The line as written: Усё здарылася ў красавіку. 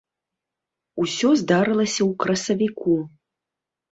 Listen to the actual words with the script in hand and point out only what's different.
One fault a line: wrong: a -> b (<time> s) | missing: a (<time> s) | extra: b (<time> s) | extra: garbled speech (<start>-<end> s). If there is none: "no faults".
no faults